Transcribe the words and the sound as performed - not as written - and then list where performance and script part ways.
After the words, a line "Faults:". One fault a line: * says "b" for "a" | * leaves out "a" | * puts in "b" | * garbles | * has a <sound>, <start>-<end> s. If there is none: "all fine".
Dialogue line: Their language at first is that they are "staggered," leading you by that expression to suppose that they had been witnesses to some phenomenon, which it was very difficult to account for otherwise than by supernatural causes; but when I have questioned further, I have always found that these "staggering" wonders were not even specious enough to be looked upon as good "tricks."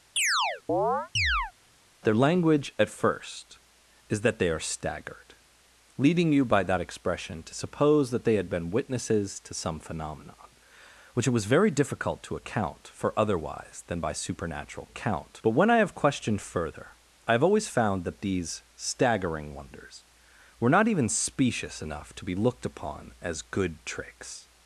Their language at first is that they are "staggered," leading you by that expression to suppose that they had been witnesses to some phenomenon, which it was very difficult to account for otherwise than by supernatural account; but when I have questioned further, I have always found that these "staggering" wonders were not even specious enough to be looked upon as good "tricks."
Faults:
* has a chirp, 0.2-1.5 s
* says "account" for "causes"